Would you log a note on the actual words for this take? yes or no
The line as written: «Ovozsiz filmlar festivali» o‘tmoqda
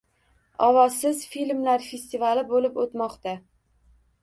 yes